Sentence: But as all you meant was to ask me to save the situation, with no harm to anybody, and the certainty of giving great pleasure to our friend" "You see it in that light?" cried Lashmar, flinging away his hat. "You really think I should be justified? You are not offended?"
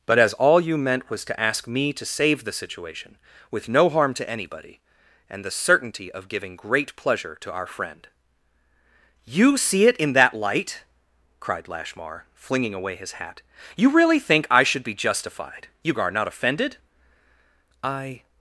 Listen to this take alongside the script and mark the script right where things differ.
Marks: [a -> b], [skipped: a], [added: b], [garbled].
But as all you meant was to ask me to save the situation, with no harm to anybody, and the certainty of giving great pleasure to our friend" "You see it in that light?" cried Lashmar, flinging away his hat. "You really think I should be justified? You are not offended?" [added: I]